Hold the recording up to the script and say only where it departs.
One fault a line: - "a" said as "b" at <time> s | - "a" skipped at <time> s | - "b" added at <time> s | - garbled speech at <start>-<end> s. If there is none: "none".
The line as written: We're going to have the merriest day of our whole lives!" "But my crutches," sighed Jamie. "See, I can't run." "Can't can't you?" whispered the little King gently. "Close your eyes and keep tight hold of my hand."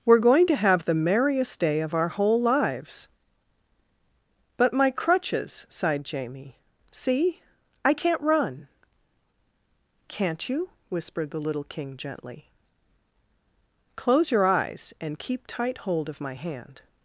- "can't" skipped at 10.5 s